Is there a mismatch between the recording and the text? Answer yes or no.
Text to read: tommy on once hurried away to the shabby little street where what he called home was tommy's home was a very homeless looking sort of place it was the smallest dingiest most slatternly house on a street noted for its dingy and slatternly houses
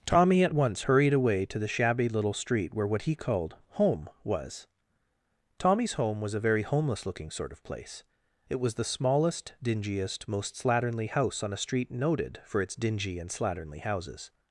yes